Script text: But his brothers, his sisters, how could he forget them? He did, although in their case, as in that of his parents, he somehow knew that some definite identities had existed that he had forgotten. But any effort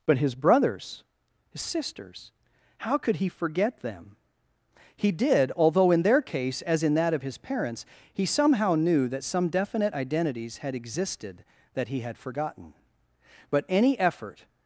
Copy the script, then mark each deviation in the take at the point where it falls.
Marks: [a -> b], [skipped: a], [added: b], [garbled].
But his brothers, his sisters, how could he forget them? He did, although in their case, as in that of his parents, he somehow knew that some definite identities had existed that he had forgotten. But any effort